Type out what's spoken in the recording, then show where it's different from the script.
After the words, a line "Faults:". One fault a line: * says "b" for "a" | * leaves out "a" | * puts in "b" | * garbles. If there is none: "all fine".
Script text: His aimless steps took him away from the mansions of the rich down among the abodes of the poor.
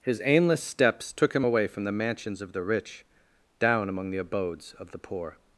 His aimless steps took him away from the mansions of the rich down among the abodes of the poor.
Faults:
all fine